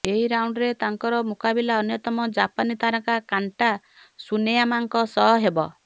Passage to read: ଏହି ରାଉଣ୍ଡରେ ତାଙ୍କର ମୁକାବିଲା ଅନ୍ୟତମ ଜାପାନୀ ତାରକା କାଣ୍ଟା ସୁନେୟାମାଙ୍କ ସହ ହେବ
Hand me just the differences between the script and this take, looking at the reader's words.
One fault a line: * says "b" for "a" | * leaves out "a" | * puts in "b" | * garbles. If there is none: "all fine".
all fine